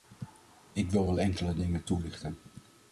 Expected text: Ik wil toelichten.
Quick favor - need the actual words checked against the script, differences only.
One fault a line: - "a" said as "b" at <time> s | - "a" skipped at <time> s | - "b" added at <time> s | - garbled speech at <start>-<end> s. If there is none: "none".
- "wel enkele dingen" added at 1.0 s